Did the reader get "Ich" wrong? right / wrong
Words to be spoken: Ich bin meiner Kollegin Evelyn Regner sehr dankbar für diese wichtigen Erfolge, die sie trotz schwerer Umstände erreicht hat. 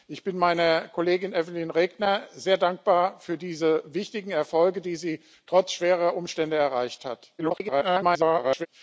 right